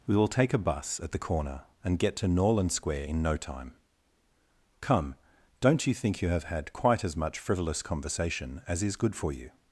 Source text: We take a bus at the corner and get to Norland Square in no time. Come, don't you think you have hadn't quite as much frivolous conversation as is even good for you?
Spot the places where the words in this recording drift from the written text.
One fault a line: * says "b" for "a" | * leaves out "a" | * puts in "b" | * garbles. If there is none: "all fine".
* puts in "will"
* says "had" for "hadn't"
* leaves out "even"